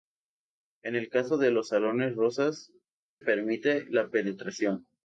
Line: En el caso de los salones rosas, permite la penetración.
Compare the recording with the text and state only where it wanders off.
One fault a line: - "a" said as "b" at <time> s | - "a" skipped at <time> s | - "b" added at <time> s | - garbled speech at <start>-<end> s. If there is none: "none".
none